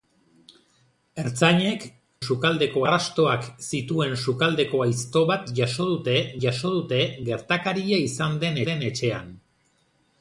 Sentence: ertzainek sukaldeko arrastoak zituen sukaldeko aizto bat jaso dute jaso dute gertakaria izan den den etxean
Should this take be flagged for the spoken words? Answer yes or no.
no